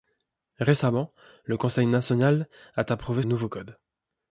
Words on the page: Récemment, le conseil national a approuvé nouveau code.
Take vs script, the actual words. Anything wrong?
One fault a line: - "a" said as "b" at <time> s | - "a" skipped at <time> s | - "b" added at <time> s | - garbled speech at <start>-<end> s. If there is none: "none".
none